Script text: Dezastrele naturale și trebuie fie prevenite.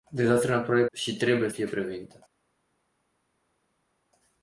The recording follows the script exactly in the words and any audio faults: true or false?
true